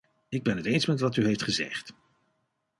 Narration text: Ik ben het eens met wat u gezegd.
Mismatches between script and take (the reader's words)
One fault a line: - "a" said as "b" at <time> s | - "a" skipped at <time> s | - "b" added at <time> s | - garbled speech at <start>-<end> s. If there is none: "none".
- "heeft" added at 1.2 s